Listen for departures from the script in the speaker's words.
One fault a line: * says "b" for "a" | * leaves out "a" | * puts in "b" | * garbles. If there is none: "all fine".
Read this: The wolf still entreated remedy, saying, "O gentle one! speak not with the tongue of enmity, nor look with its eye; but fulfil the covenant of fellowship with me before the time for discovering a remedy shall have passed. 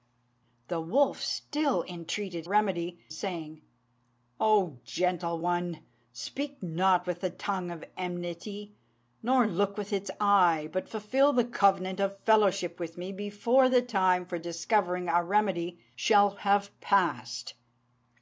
all fine